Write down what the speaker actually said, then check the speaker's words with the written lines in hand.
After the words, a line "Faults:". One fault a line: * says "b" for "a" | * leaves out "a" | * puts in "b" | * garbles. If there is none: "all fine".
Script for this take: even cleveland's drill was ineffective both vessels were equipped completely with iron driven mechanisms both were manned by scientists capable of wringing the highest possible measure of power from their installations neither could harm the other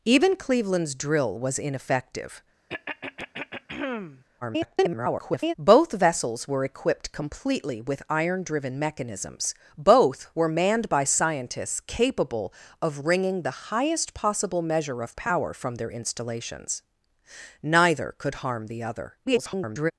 even cleveland's drill was ineffective [garbled] both vessels were equipped completely with iron driven mechanisms both were manned by scientists capable of wringing the highest possible measure of power from their installations neither could harm the other [garbled]
Faults:
* garbles
* garbles